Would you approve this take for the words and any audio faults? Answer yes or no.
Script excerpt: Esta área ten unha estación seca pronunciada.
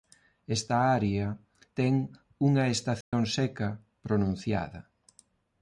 no